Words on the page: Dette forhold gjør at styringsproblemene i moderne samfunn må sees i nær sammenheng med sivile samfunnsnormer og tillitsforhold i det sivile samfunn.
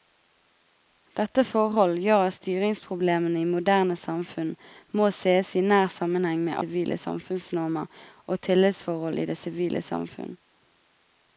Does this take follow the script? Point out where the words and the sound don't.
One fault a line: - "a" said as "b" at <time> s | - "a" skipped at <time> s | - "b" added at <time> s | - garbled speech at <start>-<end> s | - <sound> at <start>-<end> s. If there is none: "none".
none